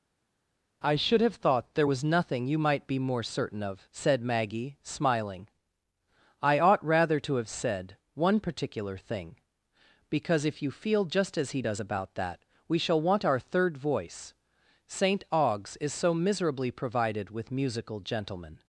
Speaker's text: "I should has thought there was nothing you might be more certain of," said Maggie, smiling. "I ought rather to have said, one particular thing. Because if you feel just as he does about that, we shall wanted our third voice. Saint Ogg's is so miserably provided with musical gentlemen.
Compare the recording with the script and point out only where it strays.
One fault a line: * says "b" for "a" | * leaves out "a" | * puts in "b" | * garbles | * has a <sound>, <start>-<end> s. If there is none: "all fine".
* says "have" for "has"
* says "want" for "wanted"